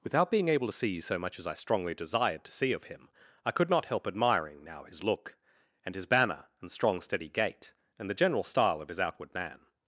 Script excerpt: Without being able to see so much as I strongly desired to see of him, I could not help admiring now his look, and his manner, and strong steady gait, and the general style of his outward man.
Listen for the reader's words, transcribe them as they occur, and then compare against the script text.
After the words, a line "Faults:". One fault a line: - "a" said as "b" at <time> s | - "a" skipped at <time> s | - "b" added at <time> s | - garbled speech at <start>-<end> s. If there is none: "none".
Without being able to see so much as I strongly desired to see of him, I could not help admiring now his look, and his banner, and strong steady gait, and the general style of his outward man.
Faults:
- "manner" said as "banner" at 6.1 s